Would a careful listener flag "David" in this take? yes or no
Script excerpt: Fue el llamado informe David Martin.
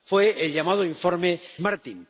yes